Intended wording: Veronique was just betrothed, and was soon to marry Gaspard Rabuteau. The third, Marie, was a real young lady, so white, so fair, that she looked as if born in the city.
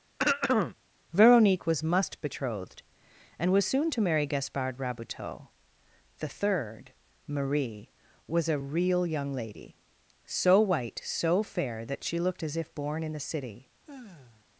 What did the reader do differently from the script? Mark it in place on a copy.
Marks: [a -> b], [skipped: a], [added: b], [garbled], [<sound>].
[throat clearing] Veronique was [just -> must] betrothed, and was soon to marry Gaspard Rabuteau. The third, Marie, was a real young lady, so white, so fair, that she looked as if born in the city. [sigh]